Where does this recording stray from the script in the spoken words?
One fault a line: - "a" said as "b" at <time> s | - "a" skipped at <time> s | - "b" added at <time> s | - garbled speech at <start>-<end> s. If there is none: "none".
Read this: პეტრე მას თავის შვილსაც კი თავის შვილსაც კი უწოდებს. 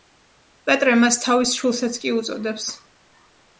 - "თავის შვილსაც კი" skipped at 2.1 s